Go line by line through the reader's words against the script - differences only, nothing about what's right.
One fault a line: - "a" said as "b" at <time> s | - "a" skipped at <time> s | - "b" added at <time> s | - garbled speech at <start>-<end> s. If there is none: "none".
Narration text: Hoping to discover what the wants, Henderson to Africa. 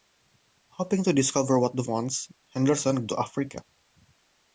none